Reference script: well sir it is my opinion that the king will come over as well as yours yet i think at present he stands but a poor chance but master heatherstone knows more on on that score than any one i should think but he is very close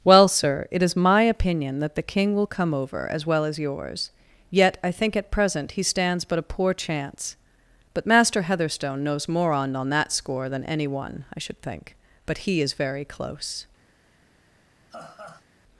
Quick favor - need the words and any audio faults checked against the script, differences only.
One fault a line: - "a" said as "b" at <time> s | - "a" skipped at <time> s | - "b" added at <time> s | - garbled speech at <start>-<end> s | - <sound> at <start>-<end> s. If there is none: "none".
- laugh at 14.9-15.5 s